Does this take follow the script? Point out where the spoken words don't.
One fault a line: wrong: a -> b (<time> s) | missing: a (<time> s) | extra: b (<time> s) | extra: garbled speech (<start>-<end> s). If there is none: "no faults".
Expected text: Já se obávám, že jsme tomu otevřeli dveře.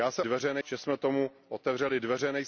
wrong: obávám -> dveře (0.2 s)